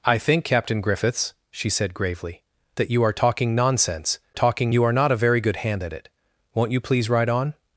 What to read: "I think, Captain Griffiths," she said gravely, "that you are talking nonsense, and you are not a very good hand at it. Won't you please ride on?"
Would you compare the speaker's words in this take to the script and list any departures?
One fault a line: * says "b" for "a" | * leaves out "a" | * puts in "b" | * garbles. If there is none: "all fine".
* says "talking" for "and"